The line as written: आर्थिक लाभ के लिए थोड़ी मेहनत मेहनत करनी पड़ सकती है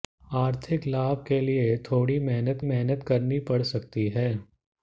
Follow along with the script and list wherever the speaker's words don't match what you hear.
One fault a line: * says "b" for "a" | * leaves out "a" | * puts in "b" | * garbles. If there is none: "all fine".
all fine